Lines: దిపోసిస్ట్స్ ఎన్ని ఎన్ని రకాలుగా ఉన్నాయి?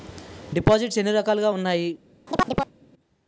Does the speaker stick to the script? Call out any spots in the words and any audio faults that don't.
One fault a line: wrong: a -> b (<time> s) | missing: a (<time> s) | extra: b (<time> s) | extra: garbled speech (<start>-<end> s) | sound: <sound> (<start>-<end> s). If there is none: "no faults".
missing: ఎన్ని (1.1 s)
sound: chirp (2.3-2.7 s)